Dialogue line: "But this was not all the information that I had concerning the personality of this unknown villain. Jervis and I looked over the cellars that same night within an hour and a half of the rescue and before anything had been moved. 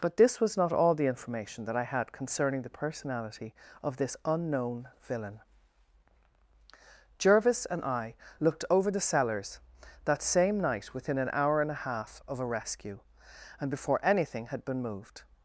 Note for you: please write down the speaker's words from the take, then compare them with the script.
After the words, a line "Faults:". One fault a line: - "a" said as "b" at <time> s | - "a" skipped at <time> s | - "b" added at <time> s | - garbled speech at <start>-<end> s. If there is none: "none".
"But this was not all the information that I had concerning the personality of this unknown villain. Jervis and I looked over the cellars that same night within an hour and a half of a rescue and before anything had been moved.
Faults:
- "the" said as "a" at 12.4 s